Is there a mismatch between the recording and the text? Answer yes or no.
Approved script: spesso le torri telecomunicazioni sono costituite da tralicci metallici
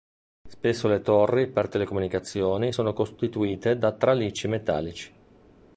yes